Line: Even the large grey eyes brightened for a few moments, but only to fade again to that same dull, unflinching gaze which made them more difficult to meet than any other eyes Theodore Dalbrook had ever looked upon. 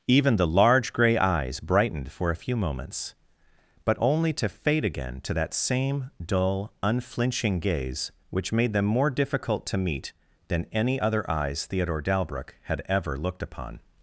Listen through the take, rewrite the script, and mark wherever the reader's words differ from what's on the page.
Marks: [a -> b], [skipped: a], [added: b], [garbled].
Even the large grey eyes brightened for a few moments, but only to fade again to that same dull, unflinching gaze which made them more difficult to meet than any other eyes Theodore Dalbrook had ever looked upon.